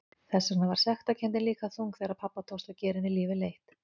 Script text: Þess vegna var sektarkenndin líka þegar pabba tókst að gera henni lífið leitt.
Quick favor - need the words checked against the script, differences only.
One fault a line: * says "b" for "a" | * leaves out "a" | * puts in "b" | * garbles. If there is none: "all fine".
* puts in "þung"